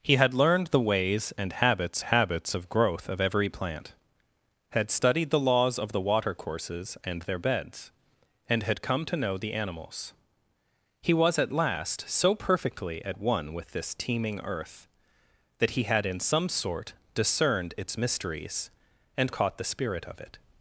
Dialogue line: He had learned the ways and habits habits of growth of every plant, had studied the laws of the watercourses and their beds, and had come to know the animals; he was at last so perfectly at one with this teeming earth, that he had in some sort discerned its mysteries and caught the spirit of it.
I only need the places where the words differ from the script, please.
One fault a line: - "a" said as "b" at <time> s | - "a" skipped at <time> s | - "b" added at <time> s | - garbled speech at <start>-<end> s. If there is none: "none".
none